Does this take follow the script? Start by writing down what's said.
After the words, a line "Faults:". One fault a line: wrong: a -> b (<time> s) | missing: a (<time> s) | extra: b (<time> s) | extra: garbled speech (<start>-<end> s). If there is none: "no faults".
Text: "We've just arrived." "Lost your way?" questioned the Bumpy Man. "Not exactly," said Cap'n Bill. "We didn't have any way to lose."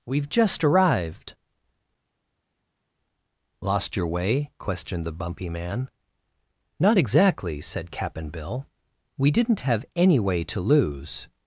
"We've just arrived." "Lost your way?" questioned the Bumpy Man. "Not exactly," said Cap'n Bill. "We didn't have any way to lose."
Faults:
no faults